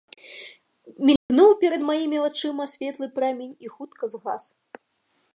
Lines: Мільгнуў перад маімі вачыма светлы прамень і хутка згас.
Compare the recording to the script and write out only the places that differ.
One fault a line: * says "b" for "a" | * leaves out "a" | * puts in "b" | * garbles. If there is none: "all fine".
all fine